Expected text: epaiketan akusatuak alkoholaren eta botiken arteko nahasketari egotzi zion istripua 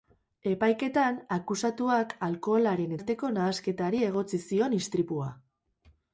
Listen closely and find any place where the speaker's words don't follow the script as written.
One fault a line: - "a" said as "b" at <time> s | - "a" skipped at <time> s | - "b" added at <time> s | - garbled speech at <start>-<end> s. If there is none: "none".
- "eta botiken" skipped at 3.0 s